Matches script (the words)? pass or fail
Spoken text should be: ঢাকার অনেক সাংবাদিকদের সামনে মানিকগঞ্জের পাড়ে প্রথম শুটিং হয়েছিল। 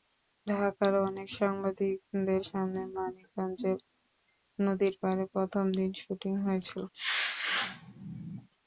fail